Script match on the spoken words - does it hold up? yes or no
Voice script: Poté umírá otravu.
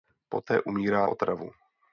yes